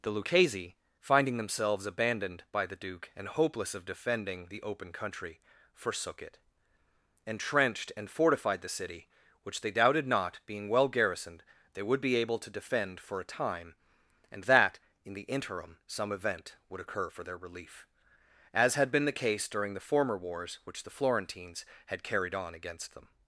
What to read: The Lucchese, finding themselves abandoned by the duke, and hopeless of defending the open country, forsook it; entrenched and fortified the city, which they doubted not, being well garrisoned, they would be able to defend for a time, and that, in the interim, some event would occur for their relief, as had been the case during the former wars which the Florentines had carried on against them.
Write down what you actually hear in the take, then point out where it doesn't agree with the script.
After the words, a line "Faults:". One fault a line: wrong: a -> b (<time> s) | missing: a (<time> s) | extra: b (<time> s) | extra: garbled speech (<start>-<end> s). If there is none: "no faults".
The Lucchese, finding themselves abandoned by the duke, and hopeless of defending the open country, forsook it; entrenched and fortified the city, which they doubted not, being well garrisoned, they would be able to defend for a time, and that, in the interim, some event would occur for their relief, as had been the case during the former wars which the Florentines had carried on against them.
Faults:
no faults